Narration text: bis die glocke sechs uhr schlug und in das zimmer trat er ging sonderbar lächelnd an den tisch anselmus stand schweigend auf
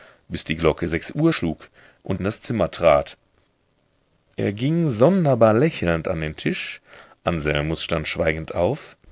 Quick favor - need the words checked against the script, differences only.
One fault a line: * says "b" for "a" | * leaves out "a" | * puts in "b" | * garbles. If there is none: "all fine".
all fine